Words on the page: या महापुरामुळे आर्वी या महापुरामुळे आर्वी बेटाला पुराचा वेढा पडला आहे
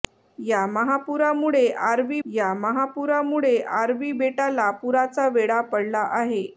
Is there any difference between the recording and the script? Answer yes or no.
no